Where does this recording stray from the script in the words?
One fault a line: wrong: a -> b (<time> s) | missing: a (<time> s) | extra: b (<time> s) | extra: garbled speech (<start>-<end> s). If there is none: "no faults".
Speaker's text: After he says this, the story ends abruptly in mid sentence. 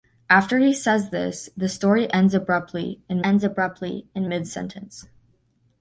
extra: ends abruptly in (3.2 s)